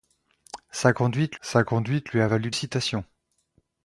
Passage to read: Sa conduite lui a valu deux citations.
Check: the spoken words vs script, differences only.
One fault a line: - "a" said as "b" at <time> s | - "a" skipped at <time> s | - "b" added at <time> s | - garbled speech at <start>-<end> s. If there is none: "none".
- "sa conduite" added at 1.4 s
- "deux" skipped at 2.5 s